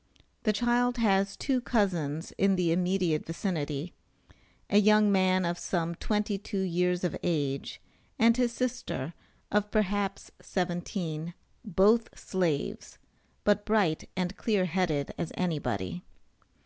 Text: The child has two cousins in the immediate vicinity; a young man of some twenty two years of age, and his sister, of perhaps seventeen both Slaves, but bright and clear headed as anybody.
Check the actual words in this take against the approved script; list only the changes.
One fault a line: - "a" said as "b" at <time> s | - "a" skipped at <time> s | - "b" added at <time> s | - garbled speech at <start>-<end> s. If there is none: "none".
none